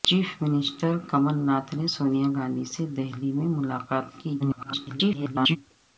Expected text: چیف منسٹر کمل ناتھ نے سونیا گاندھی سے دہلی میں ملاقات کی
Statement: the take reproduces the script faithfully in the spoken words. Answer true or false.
false